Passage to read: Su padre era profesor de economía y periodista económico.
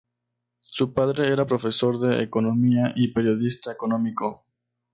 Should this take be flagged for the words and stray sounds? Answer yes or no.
no